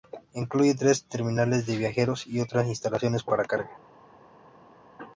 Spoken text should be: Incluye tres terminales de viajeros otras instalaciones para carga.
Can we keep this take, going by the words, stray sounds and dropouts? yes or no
no